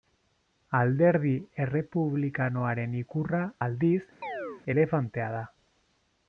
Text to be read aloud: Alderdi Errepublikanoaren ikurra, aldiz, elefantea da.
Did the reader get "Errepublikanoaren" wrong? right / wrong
right